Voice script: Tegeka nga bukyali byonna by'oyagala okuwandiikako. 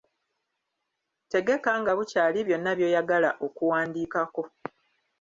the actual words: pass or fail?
pass